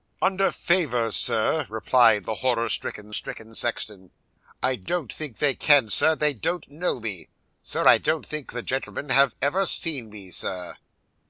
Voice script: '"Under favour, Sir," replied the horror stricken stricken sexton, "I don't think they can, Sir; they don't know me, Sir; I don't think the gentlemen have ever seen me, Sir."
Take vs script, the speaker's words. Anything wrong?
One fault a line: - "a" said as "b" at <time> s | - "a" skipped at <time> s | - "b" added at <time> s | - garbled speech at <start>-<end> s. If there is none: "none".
none